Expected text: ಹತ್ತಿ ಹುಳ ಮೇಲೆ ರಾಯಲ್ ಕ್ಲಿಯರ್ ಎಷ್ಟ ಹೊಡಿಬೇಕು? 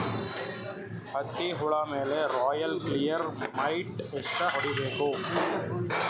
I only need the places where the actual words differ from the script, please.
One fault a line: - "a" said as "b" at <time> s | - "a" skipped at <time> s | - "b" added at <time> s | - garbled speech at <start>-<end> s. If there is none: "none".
- "ಮೈಟ್" added at 3.6 s